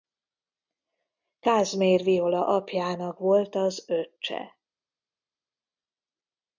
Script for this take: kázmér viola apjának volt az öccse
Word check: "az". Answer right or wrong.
right